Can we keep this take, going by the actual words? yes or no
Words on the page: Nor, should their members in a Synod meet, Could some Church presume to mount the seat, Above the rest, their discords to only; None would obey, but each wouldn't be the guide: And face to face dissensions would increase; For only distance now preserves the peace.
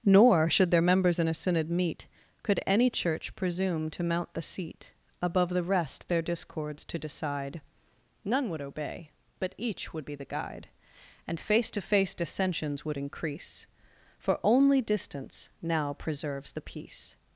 no